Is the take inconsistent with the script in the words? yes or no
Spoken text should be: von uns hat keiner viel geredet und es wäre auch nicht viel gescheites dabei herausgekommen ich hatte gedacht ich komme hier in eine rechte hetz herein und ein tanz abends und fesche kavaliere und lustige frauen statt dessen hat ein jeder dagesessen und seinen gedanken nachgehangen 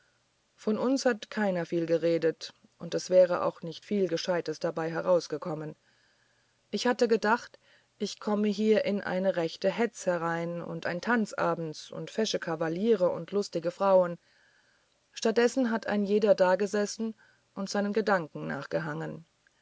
no